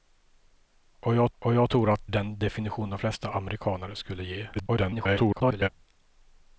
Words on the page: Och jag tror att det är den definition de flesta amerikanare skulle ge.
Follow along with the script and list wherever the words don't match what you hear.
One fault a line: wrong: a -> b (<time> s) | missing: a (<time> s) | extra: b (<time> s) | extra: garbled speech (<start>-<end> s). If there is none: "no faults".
extra: och jag (1.4 s)
missing: det är (2.0 s)
extra: garbled speech (4.5-5.7 s)